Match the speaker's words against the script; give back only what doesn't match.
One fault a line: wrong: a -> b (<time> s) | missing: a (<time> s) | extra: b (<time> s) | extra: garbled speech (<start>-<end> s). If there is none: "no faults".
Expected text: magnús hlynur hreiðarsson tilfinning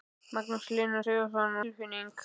no faults